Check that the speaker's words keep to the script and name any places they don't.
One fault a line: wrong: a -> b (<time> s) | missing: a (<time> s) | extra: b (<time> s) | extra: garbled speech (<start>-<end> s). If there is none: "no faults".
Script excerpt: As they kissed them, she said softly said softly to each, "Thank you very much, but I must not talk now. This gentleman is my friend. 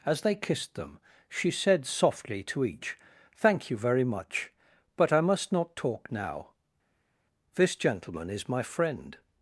missing: said softly (2.4 s)